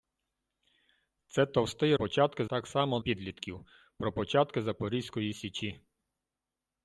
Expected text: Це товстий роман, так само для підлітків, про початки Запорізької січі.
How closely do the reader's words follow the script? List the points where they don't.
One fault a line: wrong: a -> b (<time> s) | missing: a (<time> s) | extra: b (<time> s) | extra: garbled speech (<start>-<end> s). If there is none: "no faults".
wrong: роман -> початки (1.9 s)
missing: для (3.0 s)